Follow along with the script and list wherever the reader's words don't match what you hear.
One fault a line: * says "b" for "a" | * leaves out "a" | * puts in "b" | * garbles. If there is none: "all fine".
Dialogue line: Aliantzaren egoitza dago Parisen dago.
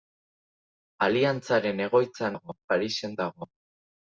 all fine